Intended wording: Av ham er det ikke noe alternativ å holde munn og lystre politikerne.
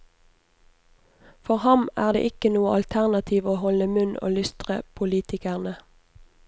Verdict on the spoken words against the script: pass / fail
fail